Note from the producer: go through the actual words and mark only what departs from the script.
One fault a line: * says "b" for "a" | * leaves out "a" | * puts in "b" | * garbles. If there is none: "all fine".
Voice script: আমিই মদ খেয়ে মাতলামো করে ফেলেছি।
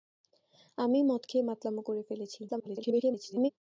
* garbles